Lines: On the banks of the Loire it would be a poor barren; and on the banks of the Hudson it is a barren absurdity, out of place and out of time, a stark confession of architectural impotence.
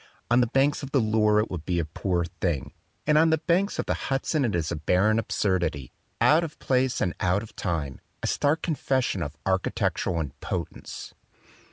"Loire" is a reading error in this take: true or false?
false